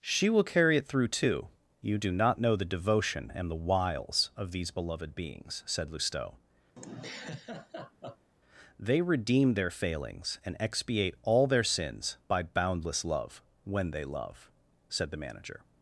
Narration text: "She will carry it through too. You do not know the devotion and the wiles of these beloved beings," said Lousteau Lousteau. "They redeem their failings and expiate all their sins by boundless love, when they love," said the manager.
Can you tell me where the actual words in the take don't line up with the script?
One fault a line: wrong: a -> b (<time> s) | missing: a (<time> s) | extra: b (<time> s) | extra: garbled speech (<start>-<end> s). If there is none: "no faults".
missing: Lousteau (6.3 s)